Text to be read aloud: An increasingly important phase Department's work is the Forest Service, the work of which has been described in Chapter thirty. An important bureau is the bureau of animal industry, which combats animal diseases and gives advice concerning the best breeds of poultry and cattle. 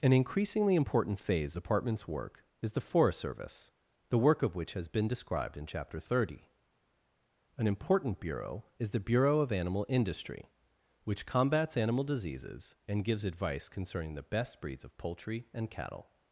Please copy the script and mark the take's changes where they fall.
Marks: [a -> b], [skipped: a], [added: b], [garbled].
An increasingly important phase Department's work is the Forest Service, the work of which has been described in Chapter thirty. An important bureau is the bureau of animal industry, which combats animal diseases and gives advice concerning the best breeds of poultry and cattle.